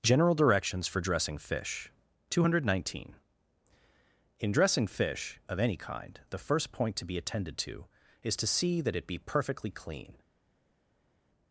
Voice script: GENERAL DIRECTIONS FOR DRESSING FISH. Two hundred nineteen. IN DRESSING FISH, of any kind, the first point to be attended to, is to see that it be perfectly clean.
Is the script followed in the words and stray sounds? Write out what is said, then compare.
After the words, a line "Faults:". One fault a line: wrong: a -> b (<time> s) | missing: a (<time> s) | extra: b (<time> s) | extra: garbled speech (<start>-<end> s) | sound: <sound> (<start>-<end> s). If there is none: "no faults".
GENERAL DIRECTIONS FOR DRESSING FISH. Two hundred nineteen. IN DRESSING FISH, of any kind, the first point to be attended to, is to see that it be perfectly clean.
Faults:
no faults